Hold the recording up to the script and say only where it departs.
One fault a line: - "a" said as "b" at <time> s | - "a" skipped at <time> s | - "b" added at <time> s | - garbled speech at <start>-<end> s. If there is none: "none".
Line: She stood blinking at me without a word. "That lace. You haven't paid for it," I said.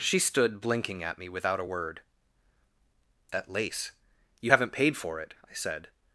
none